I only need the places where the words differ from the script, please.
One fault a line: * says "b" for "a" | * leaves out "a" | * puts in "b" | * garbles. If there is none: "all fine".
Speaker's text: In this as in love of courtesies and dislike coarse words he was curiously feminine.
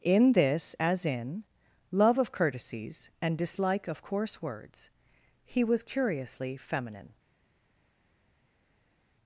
* puts in "of"